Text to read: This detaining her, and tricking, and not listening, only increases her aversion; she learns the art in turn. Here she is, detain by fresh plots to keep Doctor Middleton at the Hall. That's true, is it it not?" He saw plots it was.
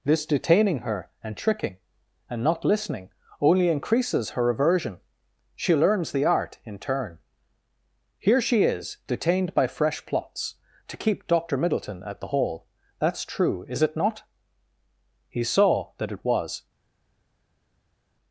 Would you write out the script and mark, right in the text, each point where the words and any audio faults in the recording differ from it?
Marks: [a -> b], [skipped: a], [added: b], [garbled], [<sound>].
This detaining her, and tricking, and not listening, only increases her aversion; she learns the art in turn. Here she is, [detain -> detained] by fresh plots to keep Doctor Middleton at the Hall. That's true, is it [skipped: it] not?" He saw [plots -> that] it was.